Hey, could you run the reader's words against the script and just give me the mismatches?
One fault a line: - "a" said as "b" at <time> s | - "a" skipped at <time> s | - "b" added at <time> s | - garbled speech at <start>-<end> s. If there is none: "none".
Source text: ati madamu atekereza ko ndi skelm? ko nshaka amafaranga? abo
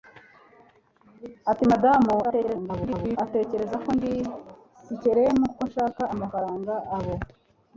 - garbled speech at 2.2-3.2 s